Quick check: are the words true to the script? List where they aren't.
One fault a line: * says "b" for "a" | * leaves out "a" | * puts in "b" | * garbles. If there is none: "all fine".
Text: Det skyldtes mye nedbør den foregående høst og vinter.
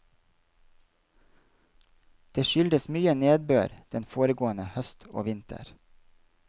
all fine